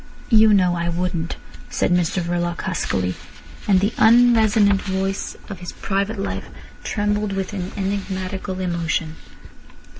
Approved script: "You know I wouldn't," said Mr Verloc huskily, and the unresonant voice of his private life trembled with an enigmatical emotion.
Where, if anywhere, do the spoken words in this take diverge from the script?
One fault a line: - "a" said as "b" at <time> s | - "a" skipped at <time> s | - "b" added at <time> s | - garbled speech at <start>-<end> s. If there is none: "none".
none